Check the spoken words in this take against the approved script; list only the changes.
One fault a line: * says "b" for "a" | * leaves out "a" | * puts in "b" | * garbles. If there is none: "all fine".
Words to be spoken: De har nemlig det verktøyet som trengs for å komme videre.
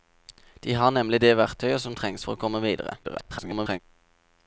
* garbles